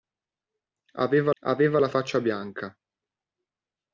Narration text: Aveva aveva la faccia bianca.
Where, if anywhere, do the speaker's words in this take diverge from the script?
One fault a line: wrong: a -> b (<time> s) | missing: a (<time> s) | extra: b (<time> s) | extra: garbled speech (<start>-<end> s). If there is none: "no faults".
no faults